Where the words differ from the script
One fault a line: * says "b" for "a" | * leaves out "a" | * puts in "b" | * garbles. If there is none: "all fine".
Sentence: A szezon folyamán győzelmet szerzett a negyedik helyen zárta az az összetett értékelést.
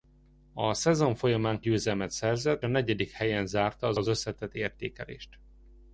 all fine